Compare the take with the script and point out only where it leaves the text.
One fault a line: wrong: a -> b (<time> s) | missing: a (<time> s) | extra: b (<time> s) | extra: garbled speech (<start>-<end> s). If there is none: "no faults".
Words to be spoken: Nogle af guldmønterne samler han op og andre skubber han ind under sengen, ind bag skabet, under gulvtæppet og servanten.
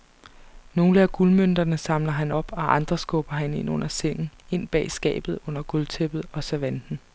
no faults